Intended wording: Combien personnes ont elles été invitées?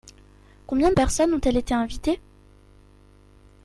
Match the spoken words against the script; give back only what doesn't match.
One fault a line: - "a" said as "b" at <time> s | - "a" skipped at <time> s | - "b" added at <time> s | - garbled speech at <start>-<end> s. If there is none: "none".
none